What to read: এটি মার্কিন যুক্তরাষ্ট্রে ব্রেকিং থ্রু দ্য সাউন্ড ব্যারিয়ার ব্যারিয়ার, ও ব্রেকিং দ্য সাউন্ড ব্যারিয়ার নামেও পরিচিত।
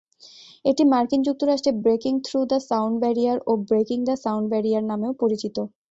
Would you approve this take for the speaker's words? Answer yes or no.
no